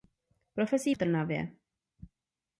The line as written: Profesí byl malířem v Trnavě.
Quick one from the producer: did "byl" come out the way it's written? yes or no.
no